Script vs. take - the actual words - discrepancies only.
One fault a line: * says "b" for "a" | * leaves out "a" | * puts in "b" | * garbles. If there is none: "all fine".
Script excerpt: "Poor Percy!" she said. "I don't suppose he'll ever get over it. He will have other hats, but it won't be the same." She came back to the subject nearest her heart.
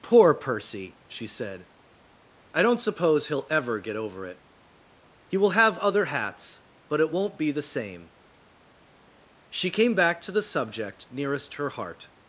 all fine